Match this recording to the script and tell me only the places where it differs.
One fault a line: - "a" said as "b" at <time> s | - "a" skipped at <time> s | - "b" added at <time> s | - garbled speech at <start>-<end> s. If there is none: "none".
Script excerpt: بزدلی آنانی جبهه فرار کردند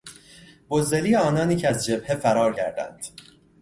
- "که از" added at 1.6 s